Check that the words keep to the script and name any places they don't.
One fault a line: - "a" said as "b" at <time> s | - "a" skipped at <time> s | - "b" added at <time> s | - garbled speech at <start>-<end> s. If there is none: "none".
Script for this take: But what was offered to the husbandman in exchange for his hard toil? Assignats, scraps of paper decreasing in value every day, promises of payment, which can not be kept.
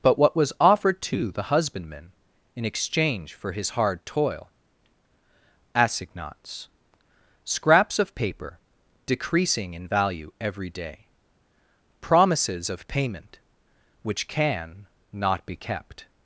none